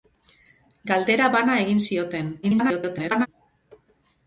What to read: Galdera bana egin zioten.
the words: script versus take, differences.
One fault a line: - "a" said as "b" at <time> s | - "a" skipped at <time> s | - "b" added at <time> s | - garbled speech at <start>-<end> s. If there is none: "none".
- garbled speech at 2.4-3.3 s